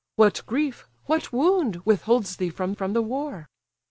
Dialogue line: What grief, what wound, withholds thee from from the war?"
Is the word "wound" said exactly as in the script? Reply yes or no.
yes